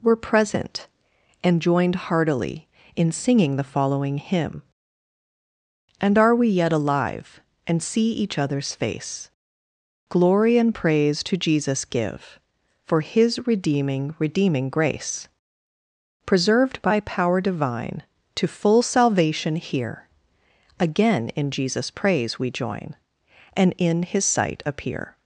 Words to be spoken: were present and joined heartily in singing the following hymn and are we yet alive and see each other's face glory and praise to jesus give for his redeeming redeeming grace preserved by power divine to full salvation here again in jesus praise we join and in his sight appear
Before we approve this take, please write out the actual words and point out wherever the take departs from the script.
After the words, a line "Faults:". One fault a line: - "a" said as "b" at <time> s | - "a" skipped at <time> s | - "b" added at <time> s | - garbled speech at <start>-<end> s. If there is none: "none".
were present and joined heartily in singing the following hymn and are we yet alive and see each other's face glory and praise to jesus give for his redeeming redeeming grace preserved by power divine to full salvation here again in jesus praise we join and in his sight appear
Faults:
none